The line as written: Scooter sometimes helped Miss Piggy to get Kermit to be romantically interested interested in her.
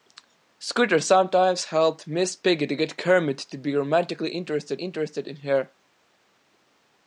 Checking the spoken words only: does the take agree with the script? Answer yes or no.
yes